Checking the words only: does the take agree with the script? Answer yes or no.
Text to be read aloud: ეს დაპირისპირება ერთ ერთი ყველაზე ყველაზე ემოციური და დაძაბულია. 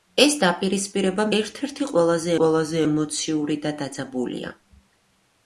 yes